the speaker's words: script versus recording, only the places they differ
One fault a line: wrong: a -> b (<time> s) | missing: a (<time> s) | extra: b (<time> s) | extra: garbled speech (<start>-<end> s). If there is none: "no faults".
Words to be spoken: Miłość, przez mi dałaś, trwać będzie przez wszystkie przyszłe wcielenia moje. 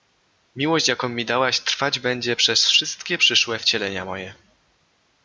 wrong: przez -> jaką (0.9 s)